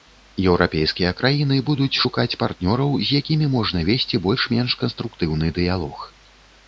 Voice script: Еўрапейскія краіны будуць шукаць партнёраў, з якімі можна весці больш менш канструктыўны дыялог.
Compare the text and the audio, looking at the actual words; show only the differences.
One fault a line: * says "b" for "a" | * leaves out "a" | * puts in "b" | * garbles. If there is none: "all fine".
all fine